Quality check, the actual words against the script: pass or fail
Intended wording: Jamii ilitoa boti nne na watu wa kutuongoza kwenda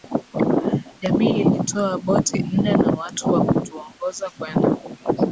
pass